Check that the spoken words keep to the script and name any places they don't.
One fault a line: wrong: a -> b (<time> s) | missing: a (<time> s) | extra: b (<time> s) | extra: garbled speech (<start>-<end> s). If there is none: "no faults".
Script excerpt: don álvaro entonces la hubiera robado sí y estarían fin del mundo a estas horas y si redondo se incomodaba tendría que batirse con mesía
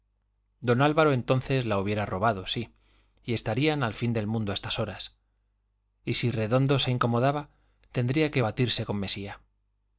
extra: al (3.8 s)